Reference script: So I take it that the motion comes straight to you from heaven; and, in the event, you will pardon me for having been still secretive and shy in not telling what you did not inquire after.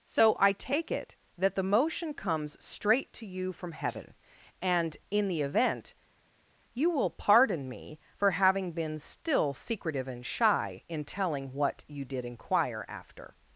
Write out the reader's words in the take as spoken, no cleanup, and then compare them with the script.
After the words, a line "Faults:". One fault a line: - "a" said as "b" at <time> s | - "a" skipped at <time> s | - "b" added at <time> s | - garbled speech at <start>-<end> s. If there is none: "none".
So I take it that the motion comes straight to you from heaven; and, in the event, you will pardon me for having been still secretive and shy in telling what you did inquire after.
Faults:
- "not" skipped at 11.0 s
- "not" skipped at 12.3 s